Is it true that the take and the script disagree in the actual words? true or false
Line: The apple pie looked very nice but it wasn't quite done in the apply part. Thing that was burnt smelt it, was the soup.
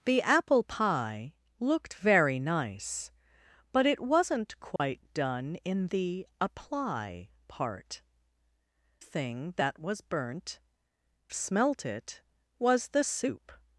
false